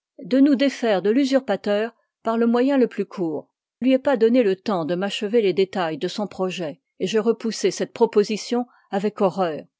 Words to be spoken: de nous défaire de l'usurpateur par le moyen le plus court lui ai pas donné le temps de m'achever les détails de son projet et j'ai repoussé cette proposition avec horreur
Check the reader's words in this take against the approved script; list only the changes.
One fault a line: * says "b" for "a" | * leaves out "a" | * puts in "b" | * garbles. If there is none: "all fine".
all fine